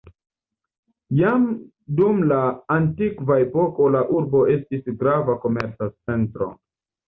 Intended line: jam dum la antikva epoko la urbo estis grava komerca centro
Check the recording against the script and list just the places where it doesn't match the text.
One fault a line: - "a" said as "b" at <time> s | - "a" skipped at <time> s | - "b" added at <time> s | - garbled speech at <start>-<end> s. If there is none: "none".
none